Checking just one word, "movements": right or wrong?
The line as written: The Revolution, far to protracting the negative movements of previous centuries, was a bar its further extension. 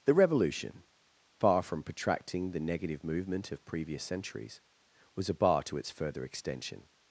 wrong